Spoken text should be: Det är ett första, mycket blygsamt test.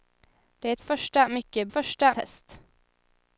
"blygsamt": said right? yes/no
no